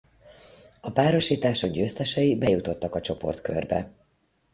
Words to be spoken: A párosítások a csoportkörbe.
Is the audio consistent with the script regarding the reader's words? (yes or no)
no